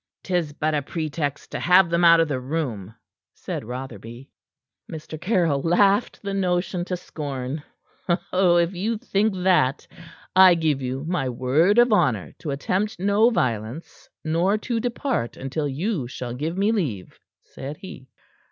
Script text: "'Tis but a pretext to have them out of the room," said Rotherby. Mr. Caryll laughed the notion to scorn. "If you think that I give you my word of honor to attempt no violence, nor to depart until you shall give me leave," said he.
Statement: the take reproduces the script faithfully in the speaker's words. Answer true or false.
true